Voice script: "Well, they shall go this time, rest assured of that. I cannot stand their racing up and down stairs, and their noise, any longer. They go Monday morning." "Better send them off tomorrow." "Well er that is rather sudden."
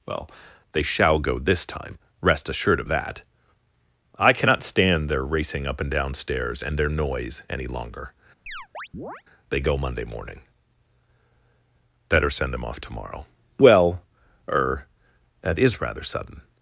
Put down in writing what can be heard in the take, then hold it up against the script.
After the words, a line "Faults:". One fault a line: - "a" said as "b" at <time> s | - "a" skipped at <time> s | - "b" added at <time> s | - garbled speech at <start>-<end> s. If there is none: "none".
"Well, they shall go this time, rest assured of that. I cannot stand their racing up and down stairs, and their noise, any longer. They go Monday morning." "Better send them off tomorrow." "Well er that is rather sudden."
Faults:
none